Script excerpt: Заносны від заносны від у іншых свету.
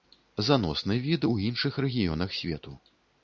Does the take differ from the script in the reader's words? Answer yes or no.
yes